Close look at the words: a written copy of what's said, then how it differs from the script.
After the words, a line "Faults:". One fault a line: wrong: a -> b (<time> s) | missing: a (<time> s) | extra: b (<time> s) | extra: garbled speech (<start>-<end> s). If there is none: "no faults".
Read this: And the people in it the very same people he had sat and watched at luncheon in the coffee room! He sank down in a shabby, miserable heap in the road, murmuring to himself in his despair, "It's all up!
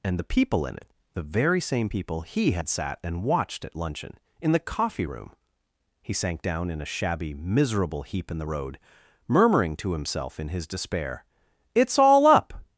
And the people in it the very same people he had sat and watched at luncheon in the coffee room! He sank down in a shabby, miserable heap in the road, murmuring to himself in his despair, "It's all up!
Faults:
no faults